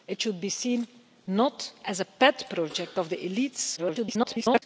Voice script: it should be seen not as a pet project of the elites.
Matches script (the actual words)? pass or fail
fail